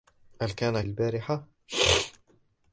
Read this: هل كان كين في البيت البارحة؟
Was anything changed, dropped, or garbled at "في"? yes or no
yes